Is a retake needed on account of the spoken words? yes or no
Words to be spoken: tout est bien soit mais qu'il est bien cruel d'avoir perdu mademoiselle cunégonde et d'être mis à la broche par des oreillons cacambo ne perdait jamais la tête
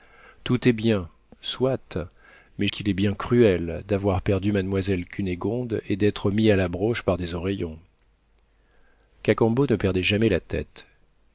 no